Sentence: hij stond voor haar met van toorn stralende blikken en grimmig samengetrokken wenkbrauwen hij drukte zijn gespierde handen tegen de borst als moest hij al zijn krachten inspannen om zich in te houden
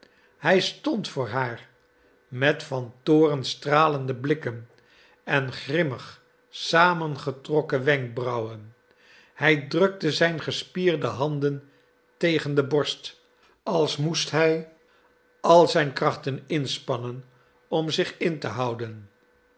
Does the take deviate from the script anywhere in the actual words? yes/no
no